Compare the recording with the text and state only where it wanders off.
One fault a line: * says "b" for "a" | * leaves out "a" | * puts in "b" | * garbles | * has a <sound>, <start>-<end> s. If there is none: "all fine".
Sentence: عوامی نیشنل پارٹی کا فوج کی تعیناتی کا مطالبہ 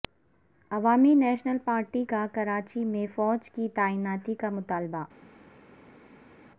* puts in "کراچی میں"